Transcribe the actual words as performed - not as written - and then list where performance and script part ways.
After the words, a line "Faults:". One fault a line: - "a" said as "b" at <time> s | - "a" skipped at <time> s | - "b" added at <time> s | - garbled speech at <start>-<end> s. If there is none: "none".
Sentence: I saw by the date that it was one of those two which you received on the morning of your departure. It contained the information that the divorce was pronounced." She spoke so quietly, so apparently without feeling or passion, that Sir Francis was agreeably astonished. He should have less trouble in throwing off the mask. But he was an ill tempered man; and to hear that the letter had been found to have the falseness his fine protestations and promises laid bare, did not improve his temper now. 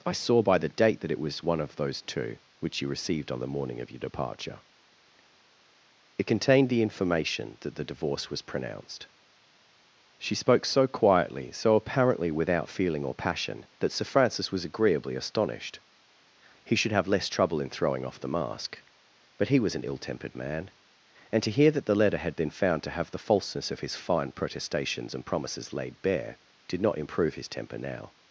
I saw by the date that it was one of those two which you received on the morning of your departure. It contained the information that the divorce was pronounced." She spoke so quietly, so apparently without feeling or passion, that Sir Francis was agreeably astonished. He should have less trouble in throwing off the mask. But he was an ill tempered man; and to hear that the letter had been found to have the falseness of his fine protestations and promises laid bare, did not improve his temper now.
Faults:
- "of" added at 23.7 s